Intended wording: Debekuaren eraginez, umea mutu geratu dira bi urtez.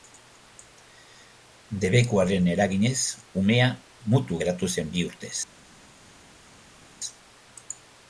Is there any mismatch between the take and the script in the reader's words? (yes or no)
yes